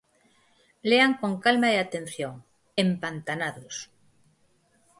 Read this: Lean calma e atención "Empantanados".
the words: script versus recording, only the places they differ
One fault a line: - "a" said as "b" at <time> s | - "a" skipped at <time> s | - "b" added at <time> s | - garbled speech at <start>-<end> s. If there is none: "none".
- "con" added at 1.2 s